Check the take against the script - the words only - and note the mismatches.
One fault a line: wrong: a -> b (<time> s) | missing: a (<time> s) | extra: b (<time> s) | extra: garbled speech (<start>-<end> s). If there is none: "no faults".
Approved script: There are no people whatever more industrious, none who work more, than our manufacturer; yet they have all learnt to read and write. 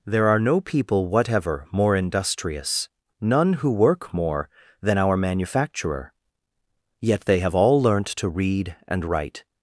no faults